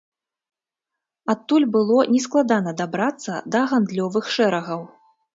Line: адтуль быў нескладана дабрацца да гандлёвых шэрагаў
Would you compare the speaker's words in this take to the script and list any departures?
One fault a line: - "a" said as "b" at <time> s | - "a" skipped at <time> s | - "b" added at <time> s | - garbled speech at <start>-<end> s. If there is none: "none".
- "быў" said as "было" at 1.8 s